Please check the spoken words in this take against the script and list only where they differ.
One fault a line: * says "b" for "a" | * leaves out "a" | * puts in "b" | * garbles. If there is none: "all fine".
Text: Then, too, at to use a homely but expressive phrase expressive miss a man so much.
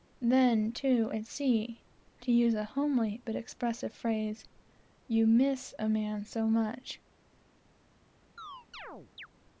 * puts in "sea"
* says "you" for "expressive"